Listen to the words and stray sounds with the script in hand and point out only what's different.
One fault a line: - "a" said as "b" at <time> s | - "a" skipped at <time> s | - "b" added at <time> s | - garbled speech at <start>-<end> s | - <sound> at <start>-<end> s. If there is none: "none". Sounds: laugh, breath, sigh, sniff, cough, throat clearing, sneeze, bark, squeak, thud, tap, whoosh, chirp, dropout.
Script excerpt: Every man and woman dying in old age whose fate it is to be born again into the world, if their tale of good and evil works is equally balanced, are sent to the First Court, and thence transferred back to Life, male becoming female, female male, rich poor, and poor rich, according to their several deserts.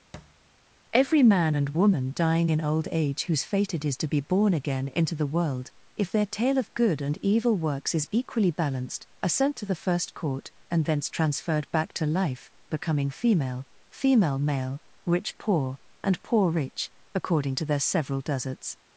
- thud at 0.1-0.4 s
- "male" skipped at 12.5 s